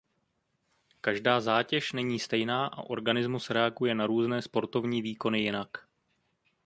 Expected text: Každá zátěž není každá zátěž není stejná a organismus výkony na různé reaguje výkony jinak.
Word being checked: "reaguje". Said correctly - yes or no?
no